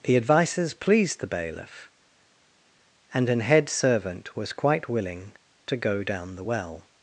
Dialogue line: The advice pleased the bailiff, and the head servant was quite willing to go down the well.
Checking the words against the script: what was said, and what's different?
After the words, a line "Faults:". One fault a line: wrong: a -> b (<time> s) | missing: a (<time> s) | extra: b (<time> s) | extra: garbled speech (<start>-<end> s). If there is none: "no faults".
The advices pleased the bailiff, and an head servant was quite willing to go down the well.
Faults:
wrong: advice -> advices (0.2 s)
wrong: the -> an (3.3 s)